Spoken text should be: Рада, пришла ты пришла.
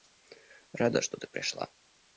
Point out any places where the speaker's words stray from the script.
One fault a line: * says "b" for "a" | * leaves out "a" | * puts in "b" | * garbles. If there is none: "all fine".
* says "что" for "пришла"